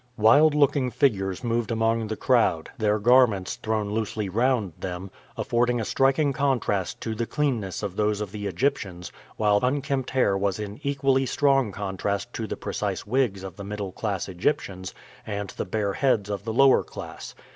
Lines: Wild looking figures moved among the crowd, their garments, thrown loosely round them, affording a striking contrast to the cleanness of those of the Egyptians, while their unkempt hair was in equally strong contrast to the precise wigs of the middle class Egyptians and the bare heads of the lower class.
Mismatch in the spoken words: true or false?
true